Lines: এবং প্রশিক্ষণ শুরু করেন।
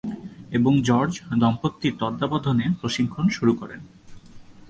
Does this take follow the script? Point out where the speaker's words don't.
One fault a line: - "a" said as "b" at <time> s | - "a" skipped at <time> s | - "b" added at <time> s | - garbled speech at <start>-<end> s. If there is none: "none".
- "জর্জ দম্পতির তত্ত্বাবধানে" added at 0.8 s